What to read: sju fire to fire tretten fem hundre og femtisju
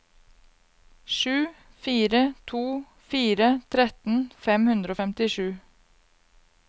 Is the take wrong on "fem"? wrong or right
right